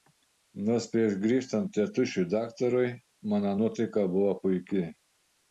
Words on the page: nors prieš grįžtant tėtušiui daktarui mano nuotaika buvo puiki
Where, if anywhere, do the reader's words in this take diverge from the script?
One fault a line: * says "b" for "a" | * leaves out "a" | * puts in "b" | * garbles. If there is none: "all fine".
all fine